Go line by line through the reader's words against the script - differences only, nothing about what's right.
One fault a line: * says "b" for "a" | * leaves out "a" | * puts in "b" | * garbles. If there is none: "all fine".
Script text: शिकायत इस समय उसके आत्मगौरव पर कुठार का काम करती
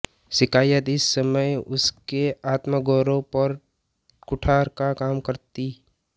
all fine